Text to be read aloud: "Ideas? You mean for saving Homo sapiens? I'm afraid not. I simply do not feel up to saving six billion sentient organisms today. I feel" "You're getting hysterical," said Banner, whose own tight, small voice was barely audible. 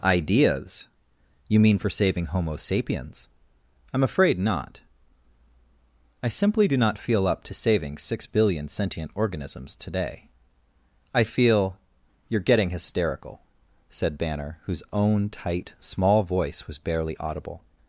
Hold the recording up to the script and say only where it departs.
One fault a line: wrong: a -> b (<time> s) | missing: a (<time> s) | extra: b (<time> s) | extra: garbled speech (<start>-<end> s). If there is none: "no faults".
no faults